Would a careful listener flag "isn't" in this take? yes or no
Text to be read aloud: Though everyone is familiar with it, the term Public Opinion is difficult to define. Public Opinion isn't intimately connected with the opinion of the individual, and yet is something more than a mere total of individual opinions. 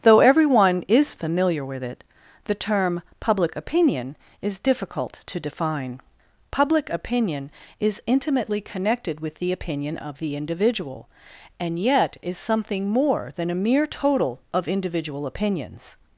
yes